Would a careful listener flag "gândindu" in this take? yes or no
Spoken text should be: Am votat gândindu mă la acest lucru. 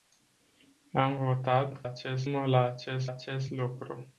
yes